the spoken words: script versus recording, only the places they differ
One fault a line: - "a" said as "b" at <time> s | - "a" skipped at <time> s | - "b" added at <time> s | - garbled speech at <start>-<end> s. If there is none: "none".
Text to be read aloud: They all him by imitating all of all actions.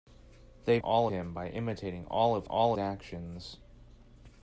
none